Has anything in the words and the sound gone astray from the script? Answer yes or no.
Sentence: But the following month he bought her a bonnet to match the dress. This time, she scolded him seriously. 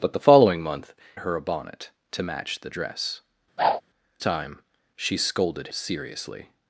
yes